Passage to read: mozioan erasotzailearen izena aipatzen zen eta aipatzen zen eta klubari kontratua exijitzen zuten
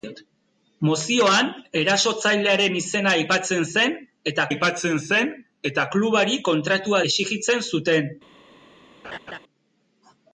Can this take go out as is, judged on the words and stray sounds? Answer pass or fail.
fail